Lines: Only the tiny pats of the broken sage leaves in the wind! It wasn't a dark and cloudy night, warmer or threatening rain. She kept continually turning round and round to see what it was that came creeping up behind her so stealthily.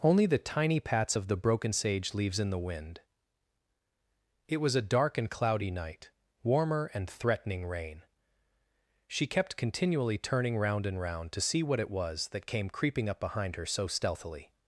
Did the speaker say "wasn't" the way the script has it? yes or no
no